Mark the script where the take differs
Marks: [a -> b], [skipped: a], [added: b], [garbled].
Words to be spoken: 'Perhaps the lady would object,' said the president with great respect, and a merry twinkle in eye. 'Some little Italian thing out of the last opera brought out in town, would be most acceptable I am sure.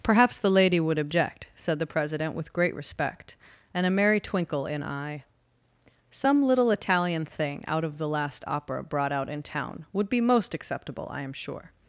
'Perhaps the lady would object,' said the president with great respect, and a merry twinkle in eye. 'Some little Italian thing out of the last opera brought out in town, would be most acceptable I am sure.